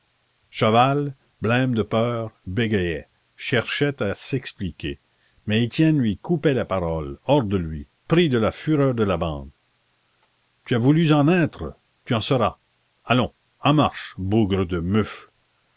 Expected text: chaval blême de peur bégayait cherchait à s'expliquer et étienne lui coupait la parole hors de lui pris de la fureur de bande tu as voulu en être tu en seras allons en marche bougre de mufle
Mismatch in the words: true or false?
true